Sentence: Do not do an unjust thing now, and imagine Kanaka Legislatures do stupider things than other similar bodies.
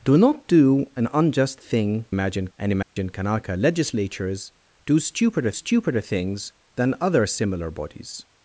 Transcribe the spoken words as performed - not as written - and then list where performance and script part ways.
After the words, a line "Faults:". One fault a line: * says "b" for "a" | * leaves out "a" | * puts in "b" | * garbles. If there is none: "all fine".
Do not do an unjust thing imagine, and imagine Kanaka Legislatures do stupider stupider things than other similar bodies.
Faults:
* says "imagine" for "now"
* puts in "stupider"